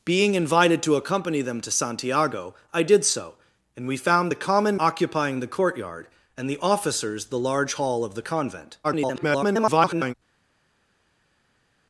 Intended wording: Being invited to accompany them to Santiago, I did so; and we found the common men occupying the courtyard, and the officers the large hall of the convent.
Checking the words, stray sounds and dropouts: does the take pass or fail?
fail